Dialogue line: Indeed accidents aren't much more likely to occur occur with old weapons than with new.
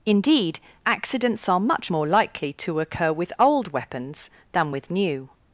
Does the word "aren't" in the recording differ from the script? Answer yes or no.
yes